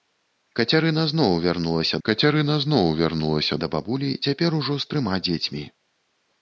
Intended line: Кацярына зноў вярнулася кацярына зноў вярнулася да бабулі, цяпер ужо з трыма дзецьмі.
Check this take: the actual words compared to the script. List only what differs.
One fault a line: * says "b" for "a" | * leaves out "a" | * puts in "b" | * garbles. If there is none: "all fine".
all fine